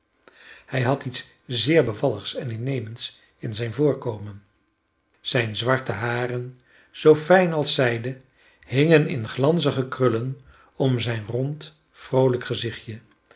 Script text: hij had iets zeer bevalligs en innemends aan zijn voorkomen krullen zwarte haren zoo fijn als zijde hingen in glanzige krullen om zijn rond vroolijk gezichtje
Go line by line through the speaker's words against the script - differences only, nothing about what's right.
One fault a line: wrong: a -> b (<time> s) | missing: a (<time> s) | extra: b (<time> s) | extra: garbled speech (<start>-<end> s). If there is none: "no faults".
wrong: aan -> in (3.4 s)
wrong: krullen -> zijne (5.2 s)